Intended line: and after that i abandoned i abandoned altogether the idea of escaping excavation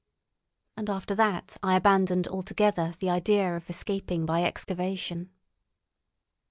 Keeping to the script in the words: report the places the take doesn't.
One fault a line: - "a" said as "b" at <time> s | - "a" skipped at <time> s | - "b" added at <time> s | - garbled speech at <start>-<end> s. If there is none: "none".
- "i abandoned" skipped at 2.3 s
- "by" added at 4.3 s